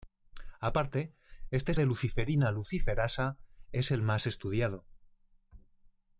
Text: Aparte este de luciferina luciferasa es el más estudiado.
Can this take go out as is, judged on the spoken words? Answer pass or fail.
pass